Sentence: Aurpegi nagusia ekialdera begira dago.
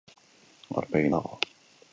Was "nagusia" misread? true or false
true